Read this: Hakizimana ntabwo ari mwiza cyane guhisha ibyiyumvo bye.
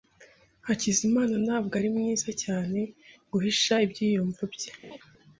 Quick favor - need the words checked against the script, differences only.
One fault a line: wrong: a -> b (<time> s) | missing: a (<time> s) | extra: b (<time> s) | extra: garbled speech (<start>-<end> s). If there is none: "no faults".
no faults